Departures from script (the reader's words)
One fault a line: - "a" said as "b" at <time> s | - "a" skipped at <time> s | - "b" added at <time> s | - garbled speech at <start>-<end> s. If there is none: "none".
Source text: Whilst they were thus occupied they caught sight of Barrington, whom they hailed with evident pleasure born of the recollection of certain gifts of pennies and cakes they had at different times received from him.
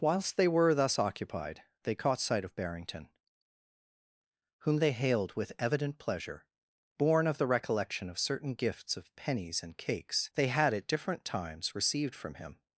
none